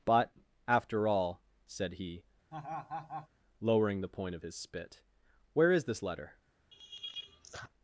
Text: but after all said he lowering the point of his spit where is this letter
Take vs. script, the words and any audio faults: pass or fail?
fail